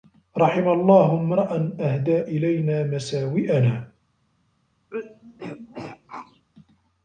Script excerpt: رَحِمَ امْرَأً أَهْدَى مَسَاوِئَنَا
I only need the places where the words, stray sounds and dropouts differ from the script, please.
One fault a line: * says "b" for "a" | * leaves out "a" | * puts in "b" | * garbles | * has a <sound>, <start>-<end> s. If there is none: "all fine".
* puts in "اللَّهُ"
* puts in "إلَيْنَا"
* has a throat clearing, 4.9-6.5 s